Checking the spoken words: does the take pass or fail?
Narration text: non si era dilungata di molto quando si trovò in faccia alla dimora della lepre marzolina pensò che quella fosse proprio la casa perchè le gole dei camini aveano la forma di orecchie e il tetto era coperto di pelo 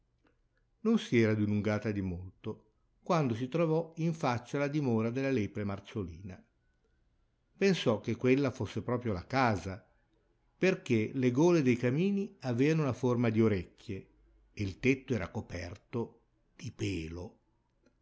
pass